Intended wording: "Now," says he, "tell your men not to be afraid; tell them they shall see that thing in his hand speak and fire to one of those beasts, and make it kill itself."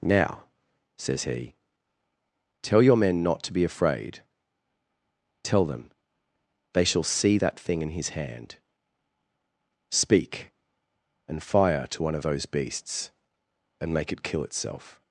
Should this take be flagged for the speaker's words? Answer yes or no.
no